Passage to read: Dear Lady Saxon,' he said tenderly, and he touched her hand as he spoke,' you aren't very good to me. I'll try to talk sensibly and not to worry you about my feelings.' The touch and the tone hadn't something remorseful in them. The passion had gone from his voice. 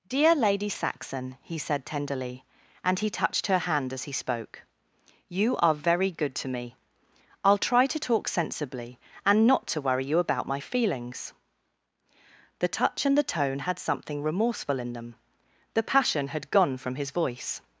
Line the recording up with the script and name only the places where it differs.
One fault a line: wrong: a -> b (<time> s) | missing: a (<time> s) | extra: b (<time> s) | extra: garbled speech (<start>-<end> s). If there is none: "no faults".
wrong: aren't -> are (5.6 s)
wrong: hadn't -> had (13.6 s)